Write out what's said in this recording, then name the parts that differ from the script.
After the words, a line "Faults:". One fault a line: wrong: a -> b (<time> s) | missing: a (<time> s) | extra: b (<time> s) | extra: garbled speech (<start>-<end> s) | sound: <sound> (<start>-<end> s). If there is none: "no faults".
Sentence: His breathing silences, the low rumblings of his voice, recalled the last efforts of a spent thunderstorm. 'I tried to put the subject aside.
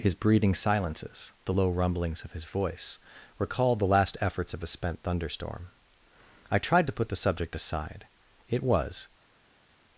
His breathing silences, the low rumblings of his voice, recalled the last efforts of a spent thunderstorm. 'I tried to put the subject aside. It was
Faults:
extra: It was (8.5 s)